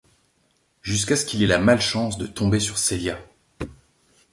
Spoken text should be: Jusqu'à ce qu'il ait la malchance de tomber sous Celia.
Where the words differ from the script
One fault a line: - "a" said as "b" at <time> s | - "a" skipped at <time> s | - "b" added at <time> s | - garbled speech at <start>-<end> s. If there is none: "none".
- "sous" said as "sur" at 2.6 s